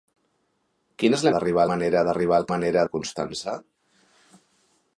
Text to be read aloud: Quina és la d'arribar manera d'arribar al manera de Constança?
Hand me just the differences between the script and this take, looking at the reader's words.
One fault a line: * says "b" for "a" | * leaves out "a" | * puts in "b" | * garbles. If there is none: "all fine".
all fine